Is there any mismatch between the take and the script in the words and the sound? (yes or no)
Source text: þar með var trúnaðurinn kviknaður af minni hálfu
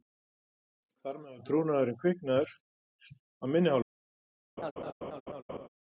yes